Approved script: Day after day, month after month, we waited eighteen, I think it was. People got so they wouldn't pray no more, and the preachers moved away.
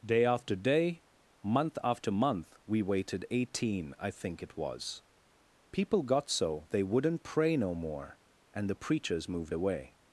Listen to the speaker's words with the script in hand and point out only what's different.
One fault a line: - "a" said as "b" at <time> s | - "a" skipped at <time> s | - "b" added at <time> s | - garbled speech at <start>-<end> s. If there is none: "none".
none